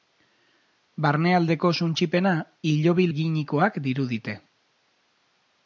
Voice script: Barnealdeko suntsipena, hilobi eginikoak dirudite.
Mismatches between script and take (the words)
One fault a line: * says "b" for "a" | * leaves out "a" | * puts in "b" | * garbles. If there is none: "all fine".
all fine